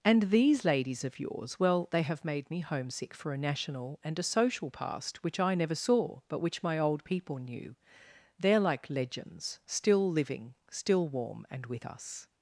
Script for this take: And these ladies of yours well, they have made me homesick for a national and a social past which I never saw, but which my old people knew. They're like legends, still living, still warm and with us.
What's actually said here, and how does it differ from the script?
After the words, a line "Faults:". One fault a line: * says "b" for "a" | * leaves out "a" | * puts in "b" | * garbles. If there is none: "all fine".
And these ladies of yours well, they have made me homesick for a national and a social past which I never saw, but which my old people knew. They're like legends, still living, still warm and with us.
Faults:
all fine